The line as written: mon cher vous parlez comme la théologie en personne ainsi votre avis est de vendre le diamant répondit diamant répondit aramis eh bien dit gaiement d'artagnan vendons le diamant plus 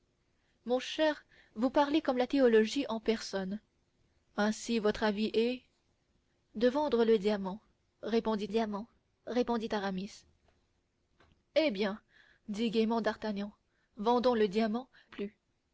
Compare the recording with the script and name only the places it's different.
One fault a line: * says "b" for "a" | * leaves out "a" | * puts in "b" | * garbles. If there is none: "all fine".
all fine